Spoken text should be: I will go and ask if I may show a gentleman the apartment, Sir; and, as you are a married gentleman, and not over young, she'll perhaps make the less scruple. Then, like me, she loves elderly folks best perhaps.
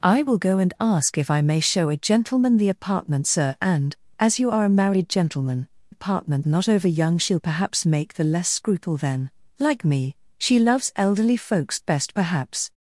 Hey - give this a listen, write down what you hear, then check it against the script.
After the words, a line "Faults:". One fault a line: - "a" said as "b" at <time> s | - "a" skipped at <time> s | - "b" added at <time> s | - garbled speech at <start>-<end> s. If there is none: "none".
I will go and ask if I may show a gentleman the apartment, Sir; and, as you are a married gentleman, apartment not over young, she'll perhaps make the less scruple. Then, like me, she loves elderly folks best perhaps.
Faults:
- "and" said as "apartment" at 5.9 s